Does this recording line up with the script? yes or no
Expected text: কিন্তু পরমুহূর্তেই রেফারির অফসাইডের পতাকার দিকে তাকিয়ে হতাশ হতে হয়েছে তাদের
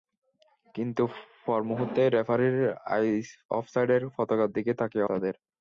no